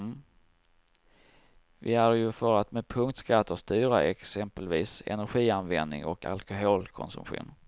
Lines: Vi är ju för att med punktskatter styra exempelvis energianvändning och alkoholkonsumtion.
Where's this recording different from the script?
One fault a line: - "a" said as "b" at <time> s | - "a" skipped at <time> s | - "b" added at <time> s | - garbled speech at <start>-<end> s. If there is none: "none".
none